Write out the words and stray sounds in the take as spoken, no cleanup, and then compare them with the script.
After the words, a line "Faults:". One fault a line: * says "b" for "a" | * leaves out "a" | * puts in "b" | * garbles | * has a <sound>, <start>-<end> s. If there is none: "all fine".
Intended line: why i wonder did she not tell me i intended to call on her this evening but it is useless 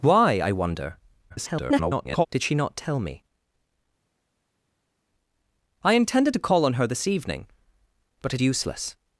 why i wonder [garbled] did she not tell me i intended to call on her this evening but it useless
Faults:
* garbles
* leaves out "is"